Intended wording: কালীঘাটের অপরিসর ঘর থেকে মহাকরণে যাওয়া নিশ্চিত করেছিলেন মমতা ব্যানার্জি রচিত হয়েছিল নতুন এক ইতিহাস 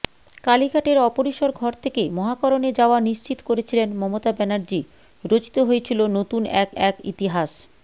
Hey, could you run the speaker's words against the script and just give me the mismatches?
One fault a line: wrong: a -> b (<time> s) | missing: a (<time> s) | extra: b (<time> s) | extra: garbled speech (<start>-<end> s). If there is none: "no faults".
extra: এক (6.8 s)